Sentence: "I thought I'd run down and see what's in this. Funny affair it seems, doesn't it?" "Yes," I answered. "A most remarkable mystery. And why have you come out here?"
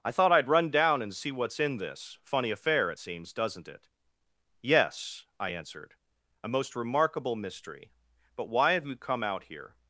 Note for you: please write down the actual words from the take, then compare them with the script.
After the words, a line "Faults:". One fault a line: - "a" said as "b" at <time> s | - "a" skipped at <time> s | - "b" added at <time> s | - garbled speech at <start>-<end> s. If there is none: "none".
"I thought I'd run down and see what's in this. Funny affair it seems, doesn't it?" "Yes," I answered. "A most remarkable mystery. But why have you come out here?"
Faults:
- "And" said as "But" at 8.4 s